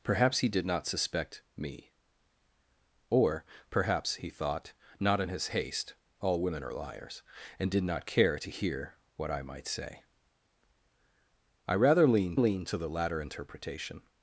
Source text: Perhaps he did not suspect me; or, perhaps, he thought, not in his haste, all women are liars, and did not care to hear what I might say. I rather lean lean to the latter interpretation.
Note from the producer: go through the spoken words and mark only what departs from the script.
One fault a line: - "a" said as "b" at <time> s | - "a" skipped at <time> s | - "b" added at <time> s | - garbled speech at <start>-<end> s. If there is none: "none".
none